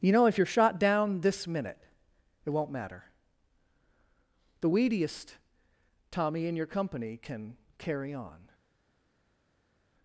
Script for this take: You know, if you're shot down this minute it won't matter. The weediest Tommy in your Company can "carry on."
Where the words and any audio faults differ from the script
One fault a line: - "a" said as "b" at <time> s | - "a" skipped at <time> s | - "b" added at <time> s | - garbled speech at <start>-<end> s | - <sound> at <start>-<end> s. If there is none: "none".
none